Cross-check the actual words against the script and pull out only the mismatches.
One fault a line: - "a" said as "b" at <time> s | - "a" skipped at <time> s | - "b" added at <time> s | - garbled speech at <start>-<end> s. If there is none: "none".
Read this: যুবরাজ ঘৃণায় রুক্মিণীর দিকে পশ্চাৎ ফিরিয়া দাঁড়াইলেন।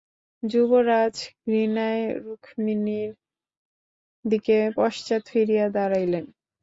none